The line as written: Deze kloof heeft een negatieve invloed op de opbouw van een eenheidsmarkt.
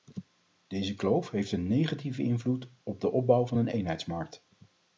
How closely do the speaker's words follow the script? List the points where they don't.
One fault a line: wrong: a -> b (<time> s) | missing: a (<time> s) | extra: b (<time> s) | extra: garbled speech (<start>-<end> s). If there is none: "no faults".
no faults